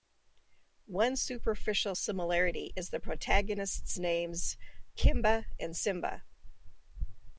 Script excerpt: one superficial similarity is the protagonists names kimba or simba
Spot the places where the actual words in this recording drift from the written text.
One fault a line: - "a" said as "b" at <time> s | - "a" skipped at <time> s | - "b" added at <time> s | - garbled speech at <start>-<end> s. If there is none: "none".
- "or" said as "and" at 5.6 s